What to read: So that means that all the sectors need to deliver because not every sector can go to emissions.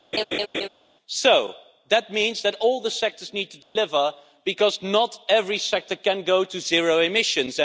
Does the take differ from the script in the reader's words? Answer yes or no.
yes